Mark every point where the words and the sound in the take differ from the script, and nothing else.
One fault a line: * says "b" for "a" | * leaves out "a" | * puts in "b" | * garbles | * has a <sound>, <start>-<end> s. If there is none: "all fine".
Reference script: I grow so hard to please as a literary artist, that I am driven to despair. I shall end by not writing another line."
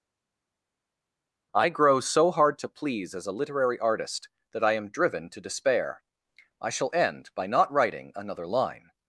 all fine